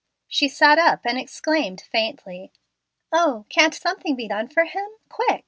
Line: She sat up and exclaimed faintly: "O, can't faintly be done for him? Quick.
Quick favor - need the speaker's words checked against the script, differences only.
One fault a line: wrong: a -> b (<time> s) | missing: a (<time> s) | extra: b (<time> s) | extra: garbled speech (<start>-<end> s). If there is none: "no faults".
wrong: faintly -> something (3.7 s)